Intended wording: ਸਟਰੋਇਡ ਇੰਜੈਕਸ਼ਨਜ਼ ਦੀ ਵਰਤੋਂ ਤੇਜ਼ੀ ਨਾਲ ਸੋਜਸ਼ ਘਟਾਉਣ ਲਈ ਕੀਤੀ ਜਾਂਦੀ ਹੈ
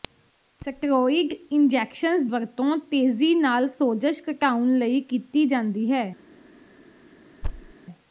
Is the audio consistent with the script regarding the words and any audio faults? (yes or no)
no